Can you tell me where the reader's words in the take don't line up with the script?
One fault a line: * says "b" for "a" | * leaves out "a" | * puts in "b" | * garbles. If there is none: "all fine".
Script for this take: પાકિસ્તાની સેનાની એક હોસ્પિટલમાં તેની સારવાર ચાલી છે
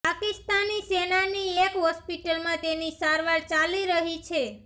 * puts in "રહી"